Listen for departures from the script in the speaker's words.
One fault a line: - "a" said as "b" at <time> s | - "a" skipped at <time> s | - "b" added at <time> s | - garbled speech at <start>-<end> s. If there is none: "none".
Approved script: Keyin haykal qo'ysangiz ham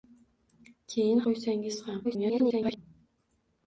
- "haykal" skipped at 1.2 s
- garbled speech at 2.0-2.8 s